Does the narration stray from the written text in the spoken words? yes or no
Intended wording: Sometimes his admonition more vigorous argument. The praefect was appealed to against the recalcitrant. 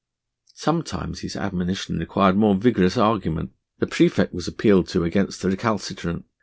yes